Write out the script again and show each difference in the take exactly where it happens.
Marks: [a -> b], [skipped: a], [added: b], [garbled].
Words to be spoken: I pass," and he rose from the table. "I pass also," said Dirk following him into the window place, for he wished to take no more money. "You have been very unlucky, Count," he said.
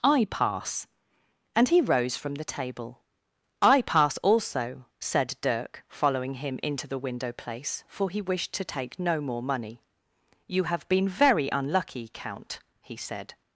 I pass," and he rose from the table. "I pass also," said Dirk following him into the window place, for he wished to take no more money. "You have been very unlucky, Count," he said.